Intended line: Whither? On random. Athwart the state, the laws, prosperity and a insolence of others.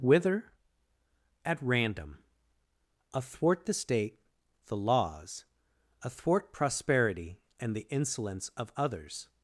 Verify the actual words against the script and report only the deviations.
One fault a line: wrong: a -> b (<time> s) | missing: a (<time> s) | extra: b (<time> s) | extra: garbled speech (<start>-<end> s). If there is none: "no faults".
wrong: On -> At (1.4 s)
extra: athwart (6.0 s)
wrong: a -> the (7.8 s)